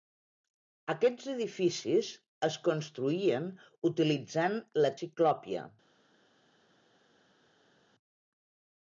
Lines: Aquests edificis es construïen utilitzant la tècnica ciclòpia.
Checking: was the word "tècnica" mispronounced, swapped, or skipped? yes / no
yes